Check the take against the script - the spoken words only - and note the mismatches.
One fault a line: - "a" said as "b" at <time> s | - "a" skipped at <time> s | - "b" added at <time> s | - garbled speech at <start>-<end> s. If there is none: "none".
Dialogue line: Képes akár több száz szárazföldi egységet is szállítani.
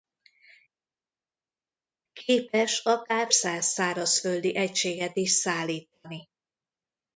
- "több" skipped at 3.3 s